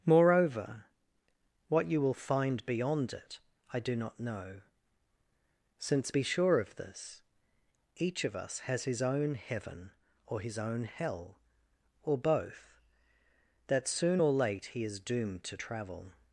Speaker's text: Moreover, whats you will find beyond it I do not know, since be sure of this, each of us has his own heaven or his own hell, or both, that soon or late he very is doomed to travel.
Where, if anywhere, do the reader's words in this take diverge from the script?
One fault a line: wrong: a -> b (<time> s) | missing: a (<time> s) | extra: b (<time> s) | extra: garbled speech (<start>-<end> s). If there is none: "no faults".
wrong: whats -> what (1.7 s)
missing: very (14.8 s)